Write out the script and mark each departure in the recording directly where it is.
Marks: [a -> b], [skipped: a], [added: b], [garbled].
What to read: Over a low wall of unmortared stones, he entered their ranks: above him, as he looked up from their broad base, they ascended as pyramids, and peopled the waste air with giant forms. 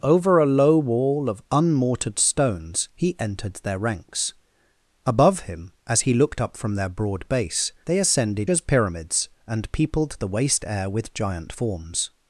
Over a low wall of unmortared stones, he entered their ranks: above him, as he looked up from their broad base, they ascended as pyramids, and peopled the waste air with giant forms.